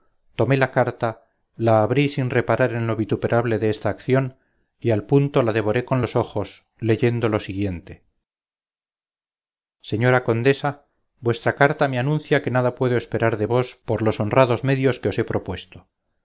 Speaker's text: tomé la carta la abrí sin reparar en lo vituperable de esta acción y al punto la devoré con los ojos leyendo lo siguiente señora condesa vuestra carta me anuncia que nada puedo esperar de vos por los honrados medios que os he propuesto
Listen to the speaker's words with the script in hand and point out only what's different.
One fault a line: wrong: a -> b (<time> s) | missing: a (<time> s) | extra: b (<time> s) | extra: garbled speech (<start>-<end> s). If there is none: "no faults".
no faults